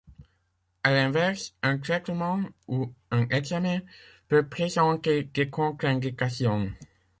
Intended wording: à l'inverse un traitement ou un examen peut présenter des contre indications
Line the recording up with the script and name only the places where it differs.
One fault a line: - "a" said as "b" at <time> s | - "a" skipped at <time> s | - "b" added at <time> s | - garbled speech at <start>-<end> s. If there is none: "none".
none